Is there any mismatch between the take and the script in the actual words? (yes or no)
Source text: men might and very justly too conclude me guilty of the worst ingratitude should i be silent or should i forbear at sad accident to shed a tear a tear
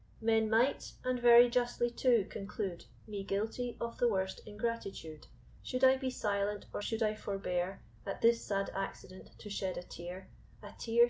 yes